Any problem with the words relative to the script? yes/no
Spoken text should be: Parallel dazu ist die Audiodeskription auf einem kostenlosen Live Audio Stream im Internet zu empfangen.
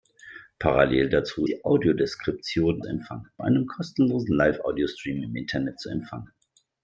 yes